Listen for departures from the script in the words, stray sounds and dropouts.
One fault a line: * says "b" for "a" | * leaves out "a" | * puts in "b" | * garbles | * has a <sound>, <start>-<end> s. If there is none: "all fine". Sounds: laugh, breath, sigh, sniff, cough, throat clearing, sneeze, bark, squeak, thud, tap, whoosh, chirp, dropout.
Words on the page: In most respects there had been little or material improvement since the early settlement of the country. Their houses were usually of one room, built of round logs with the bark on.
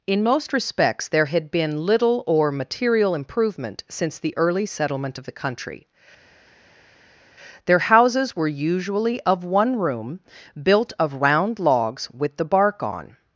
all fine